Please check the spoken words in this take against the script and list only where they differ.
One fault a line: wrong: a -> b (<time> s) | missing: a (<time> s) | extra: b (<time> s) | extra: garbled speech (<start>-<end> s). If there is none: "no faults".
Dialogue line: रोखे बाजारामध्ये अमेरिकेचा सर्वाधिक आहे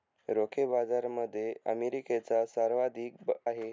no faults